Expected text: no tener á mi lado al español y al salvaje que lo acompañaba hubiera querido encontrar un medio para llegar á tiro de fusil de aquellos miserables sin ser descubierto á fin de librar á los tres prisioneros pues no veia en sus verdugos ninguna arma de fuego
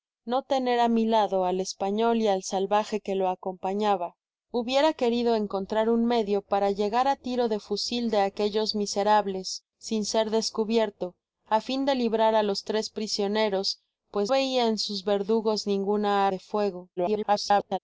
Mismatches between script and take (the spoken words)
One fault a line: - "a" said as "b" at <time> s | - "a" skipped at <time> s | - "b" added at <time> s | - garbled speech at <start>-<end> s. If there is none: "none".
- "no" skipped at 14.3 s
- "arma" skipped at 16.3 s
- garbled speech at 17.0-17.8 s